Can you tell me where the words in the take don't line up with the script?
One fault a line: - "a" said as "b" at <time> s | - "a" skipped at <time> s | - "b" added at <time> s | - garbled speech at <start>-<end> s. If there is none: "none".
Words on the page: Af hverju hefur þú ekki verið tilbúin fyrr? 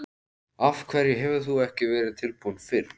none